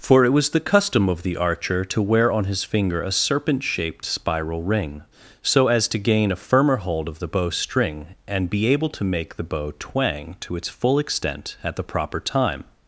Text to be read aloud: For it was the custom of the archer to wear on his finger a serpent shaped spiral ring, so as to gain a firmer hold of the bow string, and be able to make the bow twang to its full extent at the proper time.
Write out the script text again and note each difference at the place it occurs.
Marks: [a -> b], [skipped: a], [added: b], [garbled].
For it was the custom of the archer to wear on his finger a serpent shaped spiral ring, so as to gain a firmer hold of the bow string, and be able to make the bow twang to its full extent at the proper time.